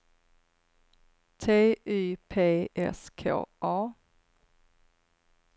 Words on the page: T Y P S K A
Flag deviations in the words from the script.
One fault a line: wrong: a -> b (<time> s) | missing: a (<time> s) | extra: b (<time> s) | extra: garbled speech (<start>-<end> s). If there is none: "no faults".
no faults